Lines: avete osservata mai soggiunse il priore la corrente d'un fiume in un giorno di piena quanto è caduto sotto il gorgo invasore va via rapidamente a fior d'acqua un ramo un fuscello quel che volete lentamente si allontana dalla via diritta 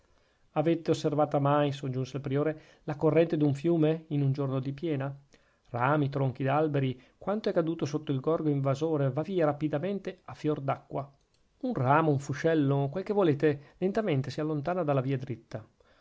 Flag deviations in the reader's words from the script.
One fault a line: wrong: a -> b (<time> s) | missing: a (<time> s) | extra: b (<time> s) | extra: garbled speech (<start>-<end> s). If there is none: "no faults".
extra: rami tronchi d'alberi (5.7 s)